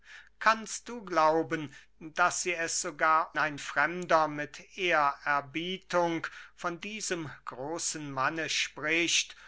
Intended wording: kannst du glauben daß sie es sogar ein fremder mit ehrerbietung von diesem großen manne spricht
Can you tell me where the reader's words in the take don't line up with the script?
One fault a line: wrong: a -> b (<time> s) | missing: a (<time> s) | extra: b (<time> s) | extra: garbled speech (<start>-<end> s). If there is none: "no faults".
no faults